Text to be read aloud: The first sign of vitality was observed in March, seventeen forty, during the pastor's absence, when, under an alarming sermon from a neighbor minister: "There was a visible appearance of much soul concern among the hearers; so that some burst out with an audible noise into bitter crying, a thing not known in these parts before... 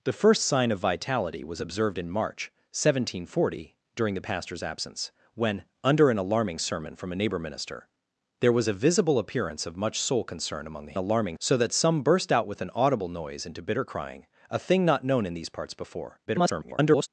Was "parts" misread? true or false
false